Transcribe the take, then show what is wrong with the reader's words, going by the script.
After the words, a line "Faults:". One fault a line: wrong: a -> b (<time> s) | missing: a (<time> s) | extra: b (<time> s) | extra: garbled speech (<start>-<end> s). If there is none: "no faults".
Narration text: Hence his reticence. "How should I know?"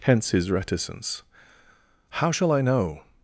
Hence his reticence. "How shall I know?"
Faults:
wrong: should -> shall (2.3 s)